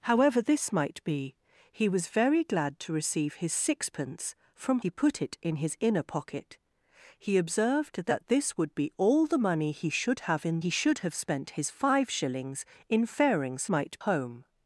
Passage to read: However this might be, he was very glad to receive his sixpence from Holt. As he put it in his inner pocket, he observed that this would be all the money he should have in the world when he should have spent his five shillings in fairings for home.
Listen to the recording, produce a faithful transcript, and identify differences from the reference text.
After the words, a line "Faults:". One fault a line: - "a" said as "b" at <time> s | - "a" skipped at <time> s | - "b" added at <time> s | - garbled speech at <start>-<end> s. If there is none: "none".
However this might be, he was very glad to receive his sixpence from He put it in his inner pocket, he observed that this would be all the money he should have in he should have spent his five shillings in fairings might home.
Faults:
- "Holt As" skipped at 4.8 s
- "the world when" skipped at 10.6 s
- "for" said as "might" at 13.7 s